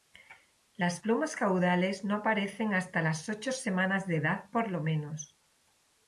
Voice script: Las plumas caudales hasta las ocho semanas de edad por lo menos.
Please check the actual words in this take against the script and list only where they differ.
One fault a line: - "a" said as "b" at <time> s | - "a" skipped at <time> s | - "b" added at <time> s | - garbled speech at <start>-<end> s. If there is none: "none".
- "no aparecen" added at 2.0 s